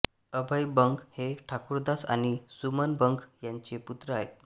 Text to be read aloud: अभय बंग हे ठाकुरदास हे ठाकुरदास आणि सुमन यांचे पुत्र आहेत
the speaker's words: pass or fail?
fail